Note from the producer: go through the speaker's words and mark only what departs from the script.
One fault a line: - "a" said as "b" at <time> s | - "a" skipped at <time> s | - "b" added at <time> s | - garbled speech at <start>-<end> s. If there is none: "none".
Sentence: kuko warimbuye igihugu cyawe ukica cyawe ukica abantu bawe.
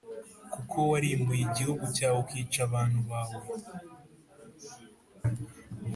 - "cyawe ukica" skipped at 2.6 s